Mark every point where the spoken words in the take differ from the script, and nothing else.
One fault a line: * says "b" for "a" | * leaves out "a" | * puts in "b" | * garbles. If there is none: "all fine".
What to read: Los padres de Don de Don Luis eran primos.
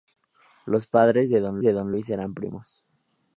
all fine